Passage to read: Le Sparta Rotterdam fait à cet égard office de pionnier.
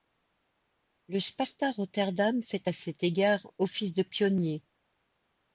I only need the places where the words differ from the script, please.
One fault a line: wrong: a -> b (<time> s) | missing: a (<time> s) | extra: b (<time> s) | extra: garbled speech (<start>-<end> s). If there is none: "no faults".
no faults